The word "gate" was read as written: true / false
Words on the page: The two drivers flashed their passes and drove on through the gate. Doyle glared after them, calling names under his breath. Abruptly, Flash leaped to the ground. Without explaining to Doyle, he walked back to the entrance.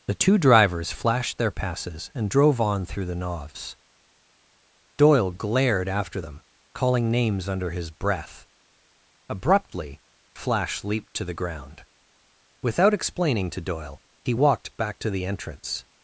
false